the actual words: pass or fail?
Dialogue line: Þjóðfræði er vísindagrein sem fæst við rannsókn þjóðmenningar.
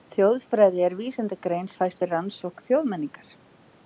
fail